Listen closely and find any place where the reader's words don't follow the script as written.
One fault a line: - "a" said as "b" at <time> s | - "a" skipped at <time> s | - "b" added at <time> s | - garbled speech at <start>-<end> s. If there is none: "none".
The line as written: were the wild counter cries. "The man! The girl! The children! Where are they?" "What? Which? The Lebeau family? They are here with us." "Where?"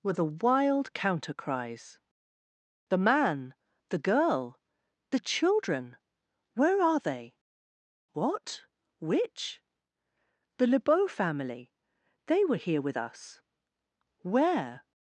- "are" said as "were" at 12.4 s